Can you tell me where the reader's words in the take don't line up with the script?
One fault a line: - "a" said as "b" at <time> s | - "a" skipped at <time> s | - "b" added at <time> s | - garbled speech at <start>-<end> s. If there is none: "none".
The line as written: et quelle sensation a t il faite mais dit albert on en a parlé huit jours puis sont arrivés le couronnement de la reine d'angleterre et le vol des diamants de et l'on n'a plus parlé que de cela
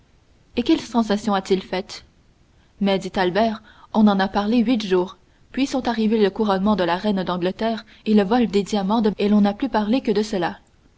none